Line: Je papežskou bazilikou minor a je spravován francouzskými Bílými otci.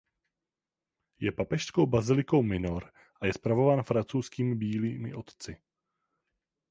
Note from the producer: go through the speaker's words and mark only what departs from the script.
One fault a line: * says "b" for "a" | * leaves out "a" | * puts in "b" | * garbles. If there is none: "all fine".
all fine